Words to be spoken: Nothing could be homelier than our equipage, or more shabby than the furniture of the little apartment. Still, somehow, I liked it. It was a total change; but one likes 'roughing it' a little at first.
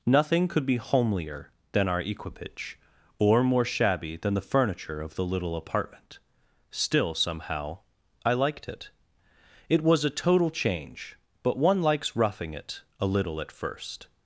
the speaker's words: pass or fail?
pass